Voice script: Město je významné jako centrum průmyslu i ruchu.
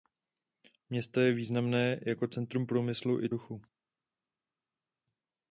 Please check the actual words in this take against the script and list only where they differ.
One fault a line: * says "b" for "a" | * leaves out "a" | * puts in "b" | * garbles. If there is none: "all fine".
all fine